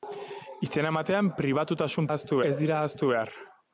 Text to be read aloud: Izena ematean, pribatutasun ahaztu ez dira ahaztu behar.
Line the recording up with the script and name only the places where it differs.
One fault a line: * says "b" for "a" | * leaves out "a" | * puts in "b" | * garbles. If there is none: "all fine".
all fine